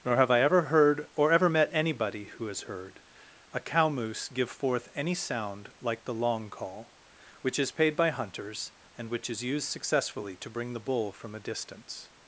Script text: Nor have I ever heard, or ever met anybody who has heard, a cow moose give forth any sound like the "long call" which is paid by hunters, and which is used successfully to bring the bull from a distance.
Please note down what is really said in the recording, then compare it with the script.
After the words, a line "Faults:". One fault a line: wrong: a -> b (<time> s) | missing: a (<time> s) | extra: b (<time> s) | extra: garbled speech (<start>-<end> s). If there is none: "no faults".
Nor have I ever heard, or ever met anybody who has heard, a cow moose give forth any sound like the "long call" which is paid by hunters, and which is used successfully to bring the bull from a distance.
Faults:
no faults